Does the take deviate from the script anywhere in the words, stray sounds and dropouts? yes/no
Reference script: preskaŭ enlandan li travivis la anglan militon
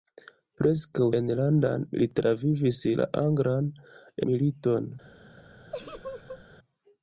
yes